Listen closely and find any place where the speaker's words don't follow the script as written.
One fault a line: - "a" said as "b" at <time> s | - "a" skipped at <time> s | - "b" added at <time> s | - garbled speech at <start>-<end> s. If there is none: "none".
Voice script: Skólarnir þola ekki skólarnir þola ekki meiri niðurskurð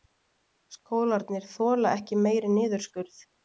- "skólarnir þola ekki" skipped at 2.2 s